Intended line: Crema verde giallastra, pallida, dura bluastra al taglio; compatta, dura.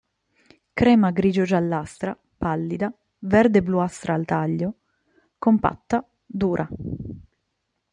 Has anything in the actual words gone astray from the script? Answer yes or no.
yes